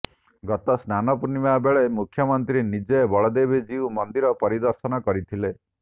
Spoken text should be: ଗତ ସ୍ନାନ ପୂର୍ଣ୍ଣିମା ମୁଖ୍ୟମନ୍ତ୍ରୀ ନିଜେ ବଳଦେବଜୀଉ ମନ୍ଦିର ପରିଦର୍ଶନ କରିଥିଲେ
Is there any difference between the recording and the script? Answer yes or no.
yes